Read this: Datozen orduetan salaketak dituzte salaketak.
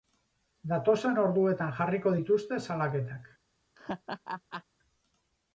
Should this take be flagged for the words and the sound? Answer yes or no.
yes